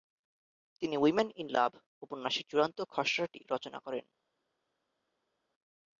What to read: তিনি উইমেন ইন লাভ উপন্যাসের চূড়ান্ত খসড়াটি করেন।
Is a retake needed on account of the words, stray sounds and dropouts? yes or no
yes